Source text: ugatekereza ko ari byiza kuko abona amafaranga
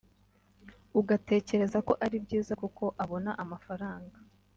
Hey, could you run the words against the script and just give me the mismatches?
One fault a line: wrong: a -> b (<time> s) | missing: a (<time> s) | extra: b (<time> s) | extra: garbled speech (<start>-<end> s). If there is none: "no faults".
no faults